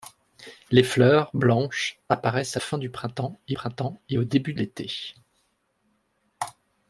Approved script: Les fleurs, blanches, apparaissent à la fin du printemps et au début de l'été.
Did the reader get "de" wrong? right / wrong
wrong